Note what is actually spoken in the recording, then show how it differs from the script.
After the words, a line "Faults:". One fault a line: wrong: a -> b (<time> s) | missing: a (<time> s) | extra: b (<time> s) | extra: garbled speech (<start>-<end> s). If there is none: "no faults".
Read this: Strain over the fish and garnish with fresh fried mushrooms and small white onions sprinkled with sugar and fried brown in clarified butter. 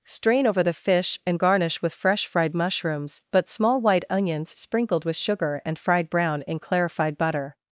Strain over the fish and garnish with fresh fried mushrooms but small white onions sprinkled with sugar and fried brown in clarified butter.
Faults:
wrong: and -> but (3.3 s)